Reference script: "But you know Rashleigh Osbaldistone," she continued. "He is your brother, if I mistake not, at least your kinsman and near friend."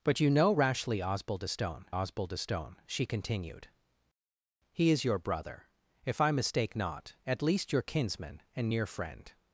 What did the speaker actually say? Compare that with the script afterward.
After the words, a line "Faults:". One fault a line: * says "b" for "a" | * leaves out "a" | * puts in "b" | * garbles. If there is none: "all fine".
"But you know Rashleigh Osbaldistone Osbaldistone," she continued. "He is your brother, if I mistake not, at least your kinsman and near friend."
Faults:
* puts in "Osbaldistone"